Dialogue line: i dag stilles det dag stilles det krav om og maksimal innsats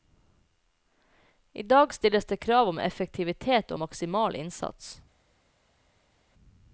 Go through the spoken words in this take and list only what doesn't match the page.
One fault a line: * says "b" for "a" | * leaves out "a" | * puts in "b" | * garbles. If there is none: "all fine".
* leaves out "dag stilles det"
* puts in "effektivitet"